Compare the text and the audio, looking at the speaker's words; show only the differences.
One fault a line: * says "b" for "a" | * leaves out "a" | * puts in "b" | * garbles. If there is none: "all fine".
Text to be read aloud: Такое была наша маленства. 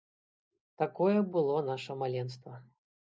* says "было" for "была"